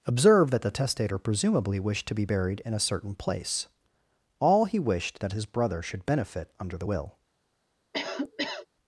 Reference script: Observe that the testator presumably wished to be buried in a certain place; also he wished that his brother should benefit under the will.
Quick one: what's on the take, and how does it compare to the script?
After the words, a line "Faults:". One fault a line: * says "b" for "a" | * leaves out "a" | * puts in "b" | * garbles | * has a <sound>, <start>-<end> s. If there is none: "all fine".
Observe that the testator presumably wished to be buried in a certain place; all he wished that his brother should benefit under the will.
Faults:
* says "all" for "also"
* has a cough, 7.9-8.7 s